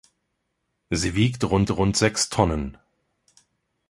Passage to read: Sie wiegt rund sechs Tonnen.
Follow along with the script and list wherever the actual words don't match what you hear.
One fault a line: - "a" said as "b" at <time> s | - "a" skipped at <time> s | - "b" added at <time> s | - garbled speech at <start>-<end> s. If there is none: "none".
- "rund" added at 1.7 s